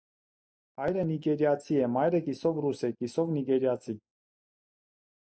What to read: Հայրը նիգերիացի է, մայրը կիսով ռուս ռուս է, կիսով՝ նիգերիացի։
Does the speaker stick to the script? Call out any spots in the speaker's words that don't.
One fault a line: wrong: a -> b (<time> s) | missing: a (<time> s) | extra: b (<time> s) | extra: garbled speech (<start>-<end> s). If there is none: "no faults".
missing: ռուս (2.8 s)